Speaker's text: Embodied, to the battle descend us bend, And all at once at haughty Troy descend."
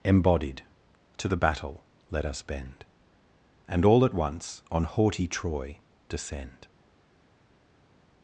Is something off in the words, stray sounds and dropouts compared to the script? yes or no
yes